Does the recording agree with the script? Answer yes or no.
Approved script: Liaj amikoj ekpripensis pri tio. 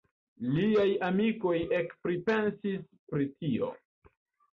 yes